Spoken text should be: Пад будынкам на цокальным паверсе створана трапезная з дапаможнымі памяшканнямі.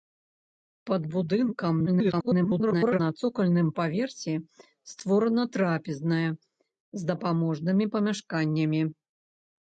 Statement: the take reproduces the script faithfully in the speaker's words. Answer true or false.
false